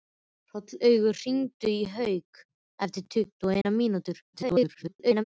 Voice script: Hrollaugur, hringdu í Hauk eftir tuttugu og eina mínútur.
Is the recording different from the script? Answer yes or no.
yes